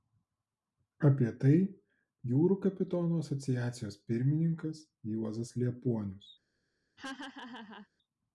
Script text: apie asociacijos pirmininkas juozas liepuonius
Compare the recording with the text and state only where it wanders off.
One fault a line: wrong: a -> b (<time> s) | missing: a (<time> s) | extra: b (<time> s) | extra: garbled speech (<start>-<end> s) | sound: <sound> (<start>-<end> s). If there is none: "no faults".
extra: tai jūrų kapitonų (1.4 s)
sound: laugh (7.0-7.9 s)